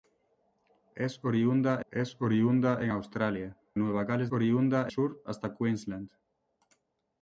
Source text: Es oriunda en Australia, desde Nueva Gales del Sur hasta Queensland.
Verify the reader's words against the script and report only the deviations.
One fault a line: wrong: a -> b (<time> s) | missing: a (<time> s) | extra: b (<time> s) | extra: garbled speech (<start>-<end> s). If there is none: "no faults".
extra: es oriunda (1.9 s)
missing: desde (3.6 s)
wrong: del -> oriunda (4.3 s)